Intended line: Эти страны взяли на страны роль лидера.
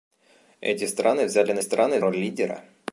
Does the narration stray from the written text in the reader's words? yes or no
no